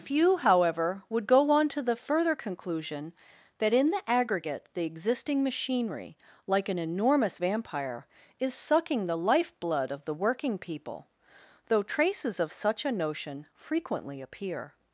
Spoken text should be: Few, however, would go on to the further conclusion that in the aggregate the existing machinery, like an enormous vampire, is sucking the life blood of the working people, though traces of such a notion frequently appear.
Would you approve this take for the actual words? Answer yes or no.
yes